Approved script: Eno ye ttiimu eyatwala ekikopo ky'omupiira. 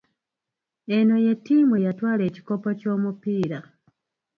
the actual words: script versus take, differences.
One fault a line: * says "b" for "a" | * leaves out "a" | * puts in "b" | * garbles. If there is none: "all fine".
all fine